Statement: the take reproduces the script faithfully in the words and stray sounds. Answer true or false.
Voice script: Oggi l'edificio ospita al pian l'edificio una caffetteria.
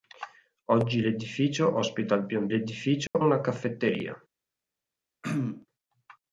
false